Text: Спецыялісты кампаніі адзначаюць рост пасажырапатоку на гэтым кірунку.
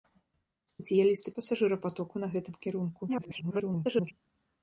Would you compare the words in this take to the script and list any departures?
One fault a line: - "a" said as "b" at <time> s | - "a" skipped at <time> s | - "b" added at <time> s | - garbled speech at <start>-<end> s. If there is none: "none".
- "кампаніі адзначаюць рост" skipped at 1.3 s
- garbled speech at 3.1-4.1 s